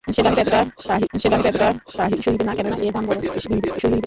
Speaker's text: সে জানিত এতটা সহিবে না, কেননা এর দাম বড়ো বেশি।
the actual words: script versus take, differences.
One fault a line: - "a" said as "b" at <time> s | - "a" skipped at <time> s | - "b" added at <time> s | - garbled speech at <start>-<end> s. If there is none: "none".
- "সে জানিত এতটা" added at 1.1 s
- garbled speech at 3.5-4.1 s